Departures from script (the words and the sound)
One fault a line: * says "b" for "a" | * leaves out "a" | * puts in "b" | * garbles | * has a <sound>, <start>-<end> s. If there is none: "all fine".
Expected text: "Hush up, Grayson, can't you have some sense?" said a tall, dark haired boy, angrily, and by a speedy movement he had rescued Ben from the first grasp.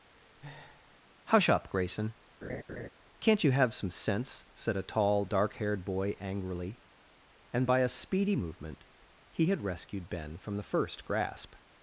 * has a breath, 0.1-1.0 s
* has a laugh, 2.4-2.9 s